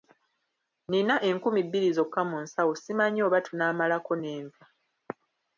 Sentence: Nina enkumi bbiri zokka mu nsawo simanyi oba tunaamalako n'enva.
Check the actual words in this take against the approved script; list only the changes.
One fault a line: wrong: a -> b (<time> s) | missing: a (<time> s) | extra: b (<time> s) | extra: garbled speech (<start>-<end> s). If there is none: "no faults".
no faults